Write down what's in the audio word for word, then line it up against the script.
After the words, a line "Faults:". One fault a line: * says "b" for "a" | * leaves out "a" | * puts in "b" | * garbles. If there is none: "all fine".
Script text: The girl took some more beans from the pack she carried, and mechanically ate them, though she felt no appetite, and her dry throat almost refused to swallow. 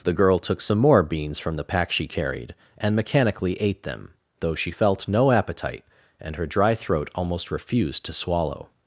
The girl took some more beans from the pack she carried, and mechanically ate them, though she felt no appetite, and her dry throat almost refused to swallow.
Faults:
all fine